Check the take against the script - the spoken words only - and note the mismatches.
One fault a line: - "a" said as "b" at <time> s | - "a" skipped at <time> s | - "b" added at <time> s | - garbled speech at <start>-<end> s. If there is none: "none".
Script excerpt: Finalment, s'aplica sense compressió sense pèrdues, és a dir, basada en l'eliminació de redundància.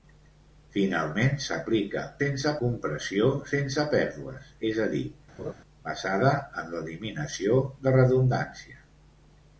none